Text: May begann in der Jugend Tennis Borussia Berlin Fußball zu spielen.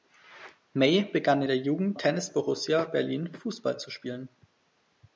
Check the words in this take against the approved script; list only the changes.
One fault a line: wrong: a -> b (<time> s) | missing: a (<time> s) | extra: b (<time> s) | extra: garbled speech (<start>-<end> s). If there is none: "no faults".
no faults